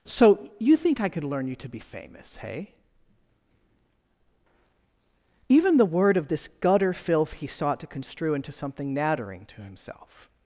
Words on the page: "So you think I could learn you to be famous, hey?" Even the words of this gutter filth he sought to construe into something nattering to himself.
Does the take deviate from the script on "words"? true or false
true